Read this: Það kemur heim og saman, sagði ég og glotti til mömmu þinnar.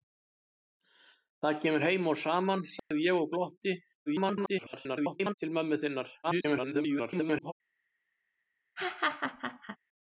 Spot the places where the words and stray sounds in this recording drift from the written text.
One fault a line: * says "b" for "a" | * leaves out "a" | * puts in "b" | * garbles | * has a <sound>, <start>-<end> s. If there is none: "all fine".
* has a dropout, 2.8-2.9 s
* garbles
* garbles
* has a laugh, 8.8-9.8 s